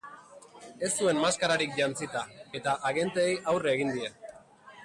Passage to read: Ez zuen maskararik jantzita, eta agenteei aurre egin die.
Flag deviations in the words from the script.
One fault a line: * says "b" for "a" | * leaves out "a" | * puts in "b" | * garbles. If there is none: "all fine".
all fine